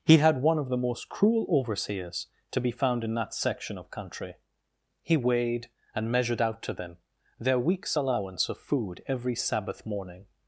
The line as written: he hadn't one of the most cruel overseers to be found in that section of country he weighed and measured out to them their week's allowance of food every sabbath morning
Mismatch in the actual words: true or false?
true